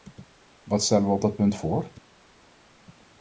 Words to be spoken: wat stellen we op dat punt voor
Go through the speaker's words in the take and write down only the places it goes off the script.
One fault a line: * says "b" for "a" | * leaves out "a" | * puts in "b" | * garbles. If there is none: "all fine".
all fine